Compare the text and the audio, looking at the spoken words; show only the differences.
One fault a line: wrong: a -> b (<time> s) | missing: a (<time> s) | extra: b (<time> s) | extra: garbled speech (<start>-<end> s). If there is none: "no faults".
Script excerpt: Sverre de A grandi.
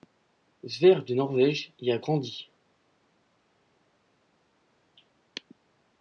extra: Norvège y (1.1 s)